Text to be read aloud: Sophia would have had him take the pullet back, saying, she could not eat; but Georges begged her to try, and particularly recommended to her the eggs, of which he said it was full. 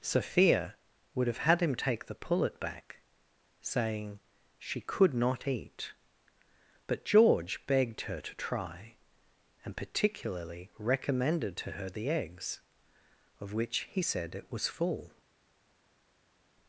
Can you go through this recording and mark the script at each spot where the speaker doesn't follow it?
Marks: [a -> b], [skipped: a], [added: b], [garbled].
Sophia would have had him take the pullet back, saying, she could not eat; but [Georges -> George] begged her to try, and particularly recommended to her the eggs, of which he said it was full.